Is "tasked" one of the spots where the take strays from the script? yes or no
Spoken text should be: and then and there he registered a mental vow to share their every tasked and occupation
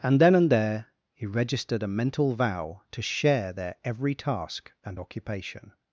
yes